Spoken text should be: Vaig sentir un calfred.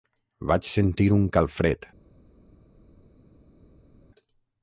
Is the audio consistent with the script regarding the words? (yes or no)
yes